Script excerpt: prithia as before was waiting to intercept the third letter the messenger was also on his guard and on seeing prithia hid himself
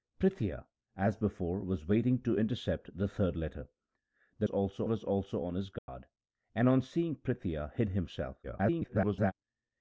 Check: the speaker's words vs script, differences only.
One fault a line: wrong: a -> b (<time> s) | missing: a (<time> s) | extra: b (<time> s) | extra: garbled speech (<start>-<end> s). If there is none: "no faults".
wrong: messenger -> also (4.5 s)
extra: garbled speech (8.4-9.3 s)